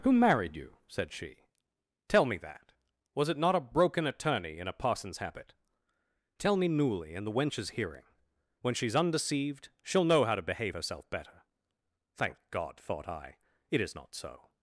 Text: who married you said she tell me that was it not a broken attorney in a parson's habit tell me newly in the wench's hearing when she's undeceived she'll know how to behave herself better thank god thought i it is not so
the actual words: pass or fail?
pass